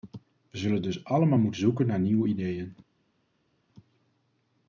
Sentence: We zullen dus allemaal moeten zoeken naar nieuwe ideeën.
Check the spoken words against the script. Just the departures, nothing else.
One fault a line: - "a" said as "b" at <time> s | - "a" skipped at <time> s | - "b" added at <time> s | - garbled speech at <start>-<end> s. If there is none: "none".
none